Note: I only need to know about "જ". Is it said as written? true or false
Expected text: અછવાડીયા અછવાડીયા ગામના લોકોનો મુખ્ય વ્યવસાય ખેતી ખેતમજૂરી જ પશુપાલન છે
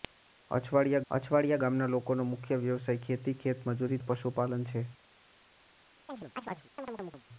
true